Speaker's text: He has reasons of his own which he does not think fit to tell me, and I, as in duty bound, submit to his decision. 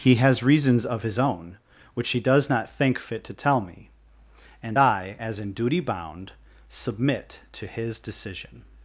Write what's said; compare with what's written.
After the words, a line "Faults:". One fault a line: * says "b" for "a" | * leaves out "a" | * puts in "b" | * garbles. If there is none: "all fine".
He has reasons of his own which he does not think fit to tell me, and I, as in duty bound, submit to his decision.
Faults:
all fine